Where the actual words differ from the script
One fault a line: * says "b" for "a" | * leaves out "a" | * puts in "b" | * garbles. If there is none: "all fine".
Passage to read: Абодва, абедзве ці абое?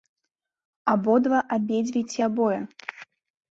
all fine